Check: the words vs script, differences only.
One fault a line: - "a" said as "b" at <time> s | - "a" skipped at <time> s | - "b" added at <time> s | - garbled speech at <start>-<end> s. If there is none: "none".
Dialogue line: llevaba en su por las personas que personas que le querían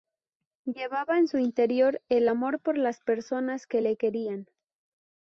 - "interior el amor" added at 1.4 s
- "personas que" skipped at 3.8 s